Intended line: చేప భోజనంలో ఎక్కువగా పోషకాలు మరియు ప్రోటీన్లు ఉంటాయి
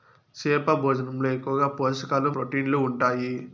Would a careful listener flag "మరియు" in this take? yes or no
yes